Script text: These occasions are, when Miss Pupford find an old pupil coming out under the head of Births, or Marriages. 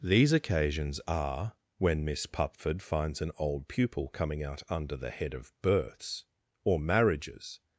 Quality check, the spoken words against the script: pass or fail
fail